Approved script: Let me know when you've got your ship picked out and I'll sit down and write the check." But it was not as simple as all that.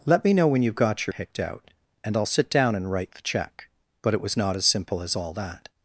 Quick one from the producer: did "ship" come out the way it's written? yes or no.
no